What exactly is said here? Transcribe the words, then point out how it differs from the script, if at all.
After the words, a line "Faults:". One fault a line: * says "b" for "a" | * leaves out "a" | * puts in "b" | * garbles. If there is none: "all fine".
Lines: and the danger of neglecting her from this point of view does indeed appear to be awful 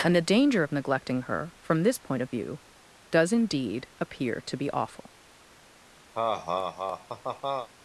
and the danger of neglecting her from this point of view does indeed appear to be awful
Faults:
all fine